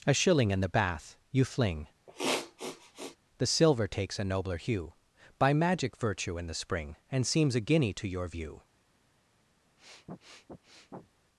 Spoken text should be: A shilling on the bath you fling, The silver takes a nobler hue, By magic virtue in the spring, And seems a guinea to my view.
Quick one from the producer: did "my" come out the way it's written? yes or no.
no